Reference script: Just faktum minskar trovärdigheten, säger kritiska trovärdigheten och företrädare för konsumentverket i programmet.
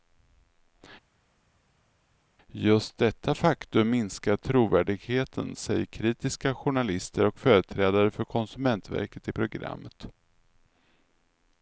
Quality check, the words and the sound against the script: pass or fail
fail